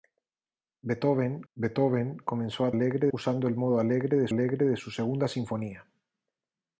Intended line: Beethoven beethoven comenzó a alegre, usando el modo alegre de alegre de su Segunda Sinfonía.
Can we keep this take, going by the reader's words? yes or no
yes